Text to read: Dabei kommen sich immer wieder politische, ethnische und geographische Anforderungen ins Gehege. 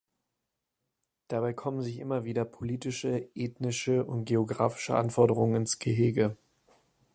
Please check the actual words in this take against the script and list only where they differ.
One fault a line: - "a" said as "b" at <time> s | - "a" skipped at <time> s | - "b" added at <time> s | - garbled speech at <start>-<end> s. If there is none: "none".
none